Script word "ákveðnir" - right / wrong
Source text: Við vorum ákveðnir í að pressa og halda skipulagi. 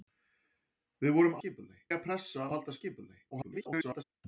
wrong